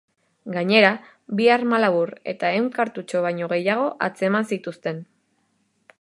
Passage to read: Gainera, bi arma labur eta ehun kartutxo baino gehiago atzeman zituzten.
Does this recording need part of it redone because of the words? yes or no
no